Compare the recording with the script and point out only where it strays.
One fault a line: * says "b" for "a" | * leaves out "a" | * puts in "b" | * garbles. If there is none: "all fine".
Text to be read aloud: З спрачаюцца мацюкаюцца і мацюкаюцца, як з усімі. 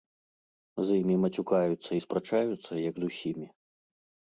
* says "імі" for "спрачаюцца"
* says "спрачаюцца" for "мацюкаюцца"